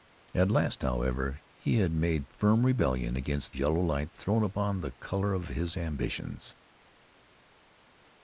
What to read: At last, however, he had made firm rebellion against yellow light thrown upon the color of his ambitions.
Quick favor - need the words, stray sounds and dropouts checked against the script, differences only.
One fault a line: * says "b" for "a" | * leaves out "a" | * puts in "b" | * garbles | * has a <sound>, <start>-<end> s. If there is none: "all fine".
all fine